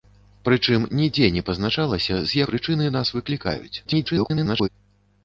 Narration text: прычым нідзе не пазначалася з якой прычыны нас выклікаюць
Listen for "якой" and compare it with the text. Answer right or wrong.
wrong